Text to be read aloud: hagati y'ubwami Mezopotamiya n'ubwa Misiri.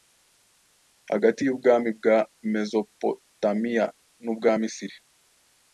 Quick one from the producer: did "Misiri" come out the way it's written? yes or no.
yes